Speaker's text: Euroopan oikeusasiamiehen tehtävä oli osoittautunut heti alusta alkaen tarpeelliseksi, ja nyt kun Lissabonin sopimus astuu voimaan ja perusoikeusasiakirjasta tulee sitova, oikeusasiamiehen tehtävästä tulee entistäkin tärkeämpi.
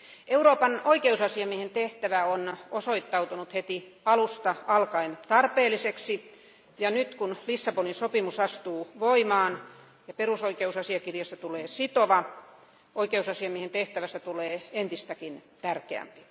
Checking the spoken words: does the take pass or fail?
fail